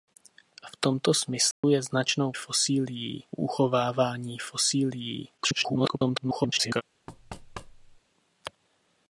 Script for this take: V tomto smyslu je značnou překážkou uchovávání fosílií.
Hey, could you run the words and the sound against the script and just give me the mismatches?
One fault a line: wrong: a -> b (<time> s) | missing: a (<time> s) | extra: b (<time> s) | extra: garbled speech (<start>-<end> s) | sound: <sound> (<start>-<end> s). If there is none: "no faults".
sound: dropout (1.5-1.6 s)
wrong: překážkou -> fosílií (2.3 s)
extra: garbled speech (5.4-6.8 s)
sound: thud (7.1-8.0 s)